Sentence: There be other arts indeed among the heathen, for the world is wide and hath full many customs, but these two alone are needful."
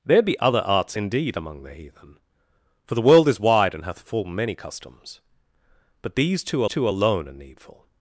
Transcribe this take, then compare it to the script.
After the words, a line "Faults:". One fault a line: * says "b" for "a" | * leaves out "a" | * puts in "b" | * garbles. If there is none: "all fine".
There be other arts indeed among the heathen, for the world is wide and hath full many customs, but these two two alone are needful."
Faults:
* puts in "two"